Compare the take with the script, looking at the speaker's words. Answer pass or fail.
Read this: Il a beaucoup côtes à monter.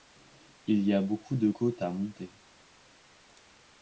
fail